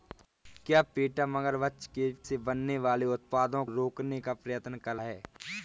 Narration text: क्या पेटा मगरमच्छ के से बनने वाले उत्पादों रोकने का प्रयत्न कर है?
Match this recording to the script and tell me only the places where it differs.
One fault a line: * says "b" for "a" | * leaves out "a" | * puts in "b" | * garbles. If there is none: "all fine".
all fine